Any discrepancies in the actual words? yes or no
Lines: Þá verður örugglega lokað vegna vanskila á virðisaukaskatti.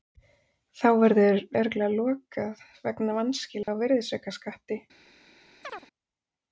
no